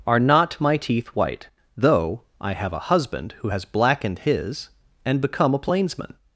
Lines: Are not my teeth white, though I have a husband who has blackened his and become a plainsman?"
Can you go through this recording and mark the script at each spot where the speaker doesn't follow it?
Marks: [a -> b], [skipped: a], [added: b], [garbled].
Are not my teeth white, though I have a husband who has blackened his and become a plainsman?"